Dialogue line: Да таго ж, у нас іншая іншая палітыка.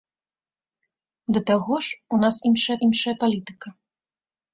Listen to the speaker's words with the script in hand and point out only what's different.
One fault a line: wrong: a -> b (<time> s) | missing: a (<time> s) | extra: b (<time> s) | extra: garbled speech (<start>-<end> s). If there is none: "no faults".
no faults